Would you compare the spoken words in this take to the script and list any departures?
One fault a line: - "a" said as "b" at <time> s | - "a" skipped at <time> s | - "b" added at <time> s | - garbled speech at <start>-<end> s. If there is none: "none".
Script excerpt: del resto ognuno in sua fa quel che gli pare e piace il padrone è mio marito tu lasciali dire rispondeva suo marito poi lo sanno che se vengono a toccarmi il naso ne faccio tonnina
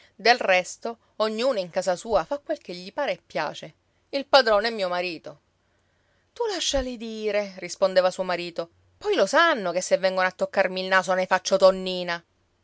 - "casa" added at 1.7 s